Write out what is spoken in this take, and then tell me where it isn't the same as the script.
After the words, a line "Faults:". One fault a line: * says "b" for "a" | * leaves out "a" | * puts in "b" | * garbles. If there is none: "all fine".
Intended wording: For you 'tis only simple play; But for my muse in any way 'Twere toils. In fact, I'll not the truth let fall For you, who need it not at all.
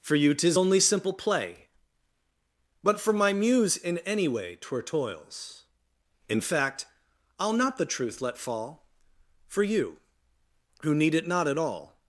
For you 'tis only simple play; But for my muse in any way 'Twere toils. In fact, I'll not the truth let fall For you, who need it not at all.
Faults:
all fine